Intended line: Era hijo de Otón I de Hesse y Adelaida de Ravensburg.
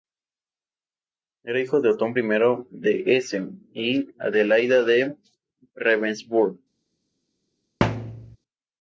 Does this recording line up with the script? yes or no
yes